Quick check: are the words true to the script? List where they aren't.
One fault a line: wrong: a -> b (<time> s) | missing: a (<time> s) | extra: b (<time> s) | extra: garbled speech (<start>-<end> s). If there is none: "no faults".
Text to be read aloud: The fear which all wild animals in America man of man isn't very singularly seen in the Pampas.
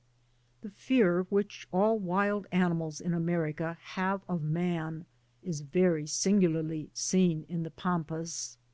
wrong: man -> have (3.8 s)
wrong: isn't -> is (5.4 s)